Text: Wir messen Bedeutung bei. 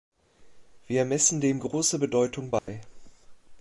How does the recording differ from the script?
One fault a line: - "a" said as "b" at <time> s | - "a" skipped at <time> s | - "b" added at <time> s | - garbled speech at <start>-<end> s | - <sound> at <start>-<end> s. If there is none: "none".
- "dem große" added at 1.4 s
- dropout at 2.6-2.7 s